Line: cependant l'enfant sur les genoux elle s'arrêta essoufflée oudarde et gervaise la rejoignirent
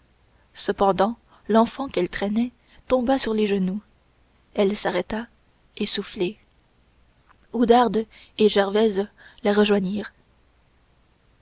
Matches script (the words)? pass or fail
fail